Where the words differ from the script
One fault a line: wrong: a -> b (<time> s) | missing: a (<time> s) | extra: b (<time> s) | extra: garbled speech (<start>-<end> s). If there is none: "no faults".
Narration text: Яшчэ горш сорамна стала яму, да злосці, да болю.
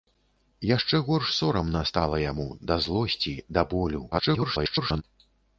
extra: garbled speech (4.1-5.0 s)